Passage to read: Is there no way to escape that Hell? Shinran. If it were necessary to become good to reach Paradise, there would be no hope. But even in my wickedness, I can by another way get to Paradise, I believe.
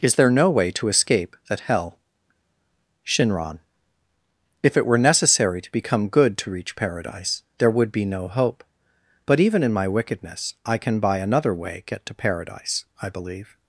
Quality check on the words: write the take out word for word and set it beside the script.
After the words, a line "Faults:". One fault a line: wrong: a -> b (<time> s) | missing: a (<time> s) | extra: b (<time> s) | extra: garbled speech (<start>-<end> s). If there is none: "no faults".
Is there no way to escape that Hell? Shinran. If it were necessary to become good to reach Paradise, there would be no hope. But even in my wickedness, I can by another way get to Paradise, I believe.
Faults:
no faults